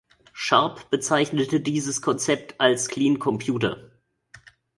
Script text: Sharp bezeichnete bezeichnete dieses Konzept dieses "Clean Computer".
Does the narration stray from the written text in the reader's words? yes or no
yes